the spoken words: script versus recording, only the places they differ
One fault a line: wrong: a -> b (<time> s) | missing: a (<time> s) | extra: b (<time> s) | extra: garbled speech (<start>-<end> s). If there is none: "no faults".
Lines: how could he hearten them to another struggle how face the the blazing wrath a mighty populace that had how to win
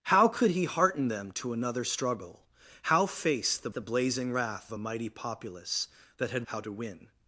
no faults